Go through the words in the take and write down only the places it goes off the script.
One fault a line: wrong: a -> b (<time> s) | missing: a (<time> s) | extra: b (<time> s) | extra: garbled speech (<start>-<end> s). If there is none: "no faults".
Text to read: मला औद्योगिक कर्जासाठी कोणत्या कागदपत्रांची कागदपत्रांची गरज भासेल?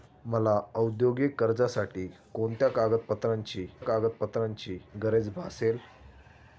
no faults